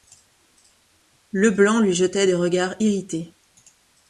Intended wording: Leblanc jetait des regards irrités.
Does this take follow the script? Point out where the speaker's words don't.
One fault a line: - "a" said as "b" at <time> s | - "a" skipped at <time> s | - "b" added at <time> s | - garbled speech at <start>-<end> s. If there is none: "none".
- "lui" added at 1.8 s